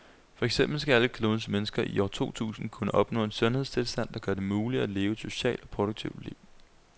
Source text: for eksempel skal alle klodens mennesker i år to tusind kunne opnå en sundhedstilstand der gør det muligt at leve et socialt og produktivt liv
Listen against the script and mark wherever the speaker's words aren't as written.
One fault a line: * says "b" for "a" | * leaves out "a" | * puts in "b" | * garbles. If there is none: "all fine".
all fine